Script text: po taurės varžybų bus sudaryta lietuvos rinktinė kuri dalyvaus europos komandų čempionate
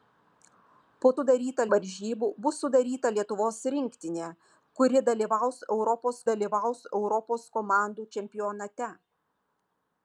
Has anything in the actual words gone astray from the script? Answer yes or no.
yes